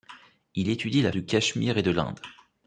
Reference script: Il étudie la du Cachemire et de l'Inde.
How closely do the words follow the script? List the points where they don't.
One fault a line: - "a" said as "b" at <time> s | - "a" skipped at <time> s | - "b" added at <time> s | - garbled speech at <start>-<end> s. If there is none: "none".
none